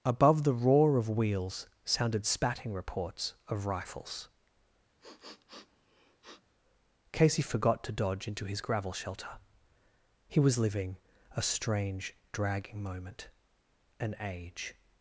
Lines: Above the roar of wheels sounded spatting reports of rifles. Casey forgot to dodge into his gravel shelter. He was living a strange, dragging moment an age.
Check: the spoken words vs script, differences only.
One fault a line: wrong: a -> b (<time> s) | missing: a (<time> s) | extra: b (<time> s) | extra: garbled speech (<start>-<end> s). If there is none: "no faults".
no faults